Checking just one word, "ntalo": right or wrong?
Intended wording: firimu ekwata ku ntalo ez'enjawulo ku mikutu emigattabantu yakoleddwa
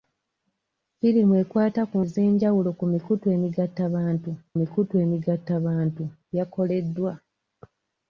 wrong